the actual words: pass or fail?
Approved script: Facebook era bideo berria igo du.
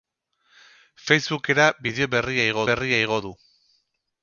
fail